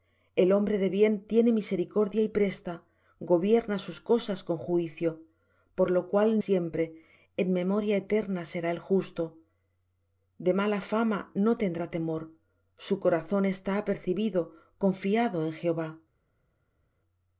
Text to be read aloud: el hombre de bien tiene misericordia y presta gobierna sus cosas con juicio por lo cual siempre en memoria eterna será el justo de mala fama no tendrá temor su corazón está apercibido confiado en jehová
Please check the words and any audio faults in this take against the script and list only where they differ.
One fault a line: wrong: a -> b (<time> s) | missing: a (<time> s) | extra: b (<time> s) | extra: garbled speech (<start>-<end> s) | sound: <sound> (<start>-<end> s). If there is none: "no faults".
no faults